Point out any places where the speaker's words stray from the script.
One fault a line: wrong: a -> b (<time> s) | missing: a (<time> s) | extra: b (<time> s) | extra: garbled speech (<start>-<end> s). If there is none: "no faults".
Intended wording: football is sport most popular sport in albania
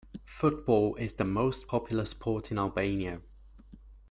wrong: sport -> the (1.1 s)